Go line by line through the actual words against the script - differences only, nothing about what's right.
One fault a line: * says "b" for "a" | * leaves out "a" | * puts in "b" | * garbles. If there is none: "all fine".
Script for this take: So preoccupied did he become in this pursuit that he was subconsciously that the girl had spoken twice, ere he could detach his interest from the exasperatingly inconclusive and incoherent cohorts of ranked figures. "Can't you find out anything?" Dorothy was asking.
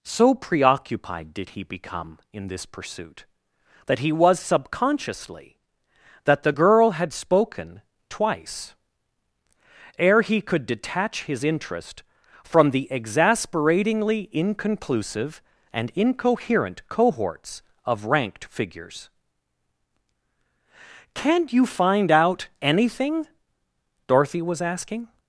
all fine